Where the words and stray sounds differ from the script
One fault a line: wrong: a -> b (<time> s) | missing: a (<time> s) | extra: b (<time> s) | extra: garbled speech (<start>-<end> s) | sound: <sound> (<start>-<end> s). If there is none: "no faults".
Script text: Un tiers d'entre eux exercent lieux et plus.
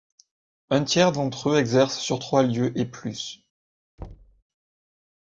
extra: sur trois (2.0 s)
sound: thud (4.0-4.4 s)